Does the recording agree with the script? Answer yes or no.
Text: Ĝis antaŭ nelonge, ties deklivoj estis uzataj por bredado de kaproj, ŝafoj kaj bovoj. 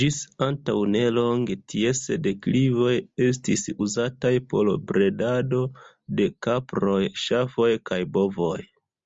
yes